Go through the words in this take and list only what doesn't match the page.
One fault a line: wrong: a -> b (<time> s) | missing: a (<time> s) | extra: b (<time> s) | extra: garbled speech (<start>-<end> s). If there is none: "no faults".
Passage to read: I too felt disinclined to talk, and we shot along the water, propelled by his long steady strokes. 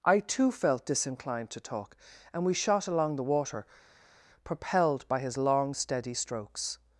no faults